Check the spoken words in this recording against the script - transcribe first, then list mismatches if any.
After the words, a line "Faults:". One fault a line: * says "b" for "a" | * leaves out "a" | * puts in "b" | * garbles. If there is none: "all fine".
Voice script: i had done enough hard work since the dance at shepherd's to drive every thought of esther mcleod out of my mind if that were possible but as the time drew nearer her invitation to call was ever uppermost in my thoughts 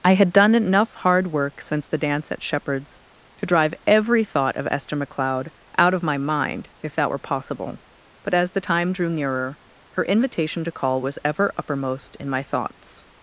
i had done enough hard work since the dance at shepherd's to drive every thought of esther mcleod out of my mind if that were possible but as the time drew nearer her invitation to call was ever uppermost in my thoughts
Faults:
all fine